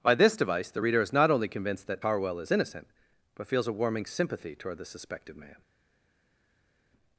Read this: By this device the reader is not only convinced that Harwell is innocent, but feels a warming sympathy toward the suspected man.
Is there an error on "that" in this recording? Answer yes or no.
no